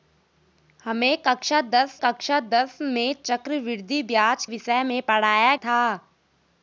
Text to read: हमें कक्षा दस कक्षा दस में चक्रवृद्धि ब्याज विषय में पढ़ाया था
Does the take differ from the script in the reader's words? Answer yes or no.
no